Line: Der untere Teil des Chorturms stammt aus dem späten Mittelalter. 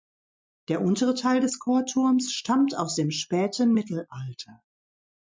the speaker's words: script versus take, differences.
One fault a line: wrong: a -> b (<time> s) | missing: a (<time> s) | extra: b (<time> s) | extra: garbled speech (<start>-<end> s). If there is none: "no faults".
no faults